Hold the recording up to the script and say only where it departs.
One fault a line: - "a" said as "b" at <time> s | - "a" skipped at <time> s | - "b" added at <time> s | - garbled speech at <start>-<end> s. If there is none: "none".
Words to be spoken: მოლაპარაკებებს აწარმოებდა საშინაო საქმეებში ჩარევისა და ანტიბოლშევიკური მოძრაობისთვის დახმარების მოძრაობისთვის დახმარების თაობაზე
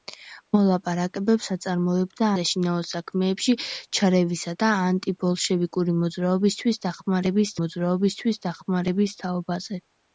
none